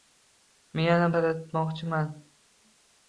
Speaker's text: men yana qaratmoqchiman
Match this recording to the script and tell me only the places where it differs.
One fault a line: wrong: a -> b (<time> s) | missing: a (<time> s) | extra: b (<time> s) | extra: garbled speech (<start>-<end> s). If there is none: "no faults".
no faults